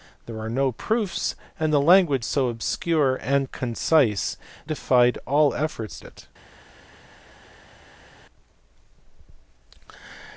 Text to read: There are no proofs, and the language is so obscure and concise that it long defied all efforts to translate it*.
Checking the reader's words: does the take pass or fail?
fail